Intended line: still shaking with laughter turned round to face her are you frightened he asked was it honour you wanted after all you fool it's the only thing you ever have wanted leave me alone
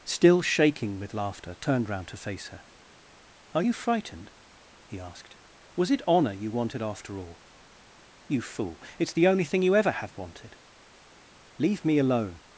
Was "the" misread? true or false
false